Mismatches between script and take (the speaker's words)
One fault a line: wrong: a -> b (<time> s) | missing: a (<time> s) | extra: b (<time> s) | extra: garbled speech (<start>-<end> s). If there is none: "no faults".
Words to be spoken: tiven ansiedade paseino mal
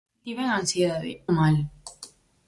missing: paseino (1.2 s)